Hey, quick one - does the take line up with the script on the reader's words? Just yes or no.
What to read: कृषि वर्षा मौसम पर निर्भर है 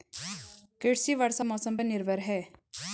yes